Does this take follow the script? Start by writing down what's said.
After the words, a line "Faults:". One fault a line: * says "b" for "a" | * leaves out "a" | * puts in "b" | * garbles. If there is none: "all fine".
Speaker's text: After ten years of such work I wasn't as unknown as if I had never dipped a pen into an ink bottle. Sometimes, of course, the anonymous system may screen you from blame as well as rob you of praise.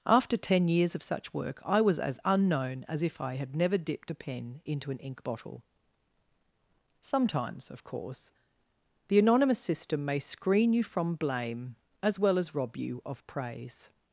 After ten years of such work I was as unknown as if I had never dipped a pen into an ink bottle. Sometimes, of course, the anonymous system may screen you from blame as well as rob you of praise.
Faults:
* says "was" for "wasn't"